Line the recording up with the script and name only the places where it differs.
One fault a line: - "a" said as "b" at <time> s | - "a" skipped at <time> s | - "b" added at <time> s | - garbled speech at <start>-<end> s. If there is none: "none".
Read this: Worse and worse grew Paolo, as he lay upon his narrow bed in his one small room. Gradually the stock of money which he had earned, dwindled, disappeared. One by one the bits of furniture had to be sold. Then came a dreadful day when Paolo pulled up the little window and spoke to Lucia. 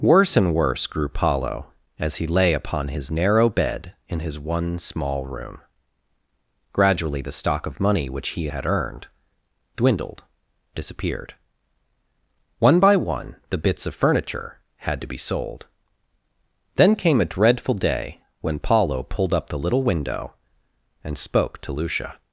none